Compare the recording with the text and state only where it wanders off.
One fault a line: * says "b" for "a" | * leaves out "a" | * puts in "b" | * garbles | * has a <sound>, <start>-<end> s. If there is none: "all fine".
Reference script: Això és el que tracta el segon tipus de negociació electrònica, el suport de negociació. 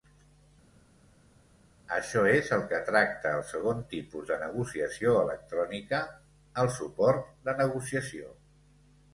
all fine